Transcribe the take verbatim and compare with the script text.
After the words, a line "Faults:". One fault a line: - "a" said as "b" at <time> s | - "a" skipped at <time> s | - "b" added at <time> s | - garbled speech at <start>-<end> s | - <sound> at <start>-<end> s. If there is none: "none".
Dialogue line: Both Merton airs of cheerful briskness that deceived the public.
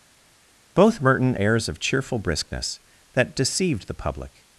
Both Merton airs of cheerful briskness that deceived the public.
Faults:
none